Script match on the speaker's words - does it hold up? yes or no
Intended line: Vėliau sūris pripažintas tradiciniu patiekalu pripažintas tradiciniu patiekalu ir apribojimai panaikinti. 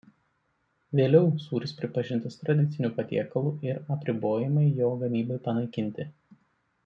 no